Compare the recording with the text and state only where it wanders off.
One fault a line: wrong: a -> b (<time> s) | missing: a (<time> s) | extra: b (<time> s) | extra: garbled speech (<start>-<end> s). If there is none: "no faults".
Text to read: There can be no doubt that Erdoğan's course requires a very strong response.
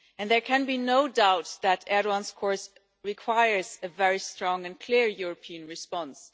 extra: and clear European (4.7 s)